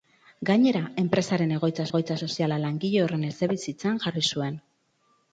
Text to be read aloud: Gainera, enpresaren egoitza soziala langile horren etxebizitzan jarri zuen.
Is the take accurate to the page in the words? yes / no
no